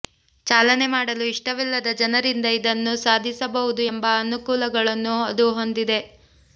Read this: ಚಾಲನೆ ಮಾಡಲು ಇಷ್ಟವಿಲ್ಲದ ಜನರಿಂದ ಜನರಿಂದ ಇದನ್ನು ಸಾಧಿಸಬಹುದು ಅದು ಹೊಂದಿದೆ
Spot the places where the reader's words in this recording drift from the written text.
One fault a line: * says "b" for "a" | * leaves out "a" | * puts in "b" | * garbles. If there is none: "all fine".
* leaves out "ಜನರಿಂದ"
* puts in "ಎಂಬ ಅನುಕೂಲಗಳನ್ನು"